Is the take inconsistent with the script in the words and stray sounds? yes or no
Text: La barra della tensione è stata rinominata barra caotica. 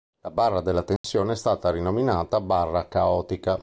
yes